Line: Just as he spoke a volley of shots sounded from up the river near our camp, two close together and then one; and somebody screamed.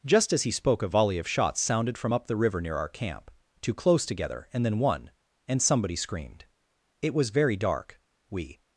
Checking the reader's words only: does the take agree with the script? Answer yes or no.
no